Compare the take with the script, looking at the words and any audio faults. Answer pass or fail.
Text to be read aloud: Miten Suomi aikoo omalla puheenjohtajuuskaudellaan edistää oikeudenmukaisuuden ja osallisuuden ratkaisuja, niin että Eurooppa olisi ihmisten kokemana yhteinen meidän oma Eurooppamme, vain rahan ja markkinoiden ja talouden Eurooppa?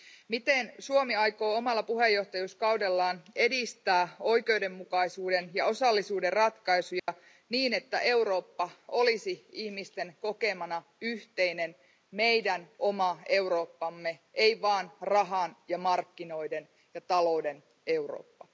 fail